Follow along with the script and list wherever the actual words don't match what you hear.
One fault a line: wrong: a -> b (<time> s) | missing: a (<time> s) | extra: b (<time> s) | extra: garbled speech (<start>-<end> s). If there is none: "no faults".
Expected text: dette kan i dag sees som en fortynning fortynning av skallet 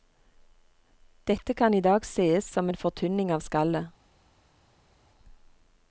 missing: fortynning (3.3 s)